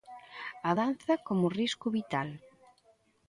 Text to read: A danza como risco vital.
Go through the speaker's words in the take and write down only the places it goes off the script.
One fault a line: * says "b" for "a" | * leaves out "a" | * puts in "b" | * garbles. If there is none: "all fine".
all fine